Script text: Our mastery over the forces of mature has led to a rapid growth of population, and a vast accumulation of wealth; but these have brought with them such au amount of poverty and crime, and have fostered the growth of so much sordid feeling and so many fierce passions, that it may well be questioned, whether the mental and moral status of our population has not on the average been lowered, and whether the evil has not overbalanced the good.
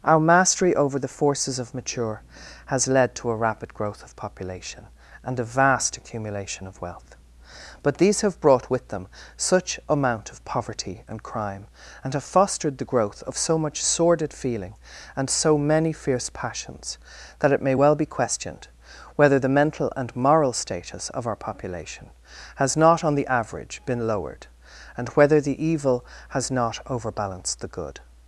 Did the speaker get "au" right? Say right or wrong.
wrong